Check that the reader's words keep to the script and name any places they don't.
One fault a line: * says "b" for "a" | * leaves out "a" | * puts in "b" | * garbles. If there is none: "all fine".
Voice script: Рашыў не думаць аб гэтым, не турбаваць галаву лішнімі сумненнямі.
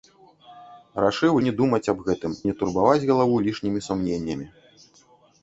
all fine